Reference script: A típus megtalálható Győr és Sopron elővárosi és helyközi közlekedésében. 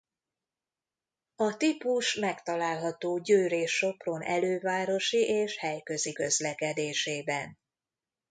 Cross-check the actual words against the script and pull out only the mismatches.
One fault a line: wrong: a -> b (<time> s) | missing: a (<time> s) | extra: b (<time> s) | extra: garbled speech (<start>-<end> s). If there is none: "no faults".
no faults